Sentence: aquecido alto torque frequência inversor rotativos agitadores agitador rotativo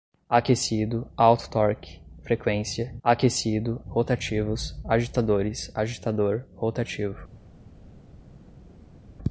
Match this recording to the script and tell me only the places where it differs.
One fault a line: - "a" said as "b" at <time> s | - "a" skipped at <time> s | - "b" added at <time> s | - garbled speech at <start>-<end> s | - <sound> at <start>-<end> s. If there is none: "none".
- "inversor" said as "aquecido" at 3.0 s